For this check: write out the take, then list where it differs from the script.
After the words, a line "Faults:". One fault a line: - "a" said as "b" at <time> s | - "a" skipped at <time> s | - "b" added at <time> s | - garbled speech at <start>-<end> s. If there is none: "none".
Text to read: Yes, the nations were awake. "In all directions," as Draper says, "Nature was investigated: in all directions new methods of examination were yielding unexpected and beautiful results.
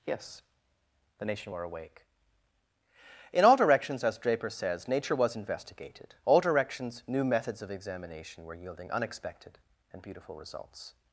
Yes, the nation were awake. "In all directions," as Draper says, "Nature was investigated: all directions new methods of examination were yielding unexpected and beautiful results.
Faults:
- "nations" said as "nation" at 1.2 s
- "in" skipped at 6.1 s